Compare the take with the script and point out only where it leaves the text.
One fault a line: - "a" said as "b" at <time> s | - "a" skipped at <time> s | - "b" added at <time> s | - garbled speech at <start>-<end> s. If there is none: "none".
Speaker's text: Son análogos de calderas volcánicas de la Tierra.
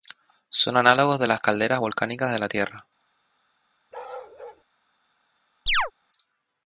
- "las" added at 1.2 s